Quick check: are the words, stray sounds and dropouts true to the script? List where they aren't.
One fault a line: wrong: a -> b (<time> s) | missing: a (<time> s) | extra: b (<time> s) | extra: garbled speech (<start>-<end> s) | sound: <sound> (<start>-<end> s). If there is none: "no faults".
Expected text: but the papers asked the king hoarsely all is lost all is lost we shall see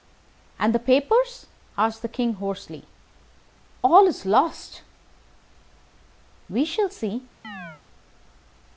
wrong: but -> and (0.6 s)
missing: all is lost (4.8 s)
sound: chirp (7.4-7.8 s)